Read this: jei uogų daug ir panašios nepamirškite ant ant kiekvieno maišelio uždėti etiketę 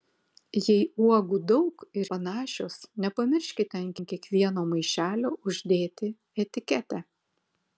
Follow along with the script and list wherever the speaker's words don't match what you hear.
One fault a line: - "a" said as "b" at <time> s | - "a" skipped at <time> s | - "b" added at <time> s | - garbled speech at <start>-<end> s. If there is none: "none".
none